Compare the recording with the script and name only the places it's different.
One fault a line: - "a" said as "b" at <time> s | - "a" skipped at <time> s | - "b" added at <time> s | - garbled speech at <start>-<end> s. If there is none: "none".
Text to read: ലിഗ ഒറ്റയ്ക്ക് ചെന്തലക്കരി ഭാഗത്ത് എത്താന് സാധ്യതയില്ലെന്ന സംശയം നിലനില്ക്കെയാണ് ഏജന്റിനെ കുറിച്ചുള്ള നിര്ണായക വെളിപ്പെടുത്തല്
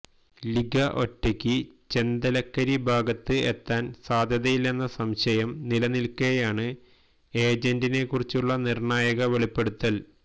none